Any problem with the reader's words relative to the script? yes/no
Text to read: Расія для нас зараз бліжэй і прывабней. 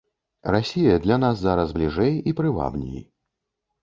no